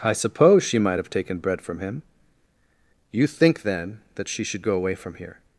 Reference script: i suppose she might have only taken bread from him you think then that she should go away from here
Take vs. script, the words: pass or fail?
fail